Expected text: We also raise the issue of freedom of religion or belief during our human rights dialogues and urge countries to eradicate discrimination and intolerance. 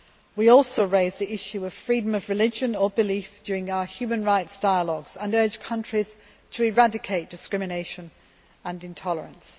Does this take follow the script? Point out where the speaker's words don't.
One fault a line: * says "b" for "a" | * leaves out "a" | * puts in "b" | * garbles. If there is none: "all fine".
all fine